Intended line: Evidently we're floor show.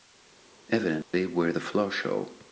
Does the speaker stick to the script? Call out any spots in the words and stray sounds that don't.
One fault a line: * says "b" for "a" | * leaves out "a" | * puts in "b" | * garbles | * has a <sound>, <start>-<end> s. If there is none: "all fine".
* has a dropout, 1.0-1.1 s
* puts in "the"